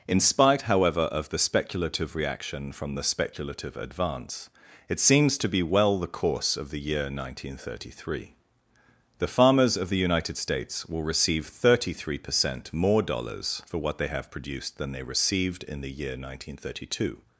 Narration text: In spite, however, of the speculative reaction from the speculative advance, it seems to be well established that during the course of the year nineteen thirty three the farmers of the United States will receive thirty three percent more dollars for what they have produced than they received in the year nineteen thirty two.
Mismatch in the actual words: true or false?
true